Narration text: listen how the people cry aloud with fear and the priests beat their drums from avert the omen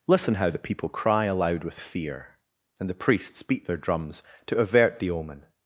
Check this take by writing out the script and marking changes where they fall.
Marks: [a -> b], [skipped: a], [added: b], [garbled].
listen how the people cry aloud with fear and the priests beat their drums [from -> to] avert the omen